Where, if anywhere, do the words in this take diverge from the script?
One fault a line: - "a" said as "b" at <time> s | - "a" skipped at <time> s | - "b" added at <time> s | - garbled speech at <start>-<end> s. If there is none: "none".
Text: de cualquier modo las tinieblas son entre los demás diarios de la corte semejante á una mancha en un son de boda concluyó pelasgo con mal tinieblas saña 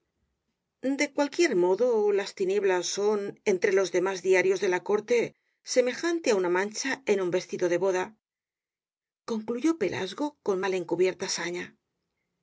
- "son" said as "vestido" at 7.4 s
- "tinieblas" said as "encubierta" at 10.8 s